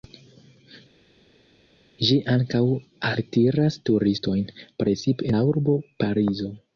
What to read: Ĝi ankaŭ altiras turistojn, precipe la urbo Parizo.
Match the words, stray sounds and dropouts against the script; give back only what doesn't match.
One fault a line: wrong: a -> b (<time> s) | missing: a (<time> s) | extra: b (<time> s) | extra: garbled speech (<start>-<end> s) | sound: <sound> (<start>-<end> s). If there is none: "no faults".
no faults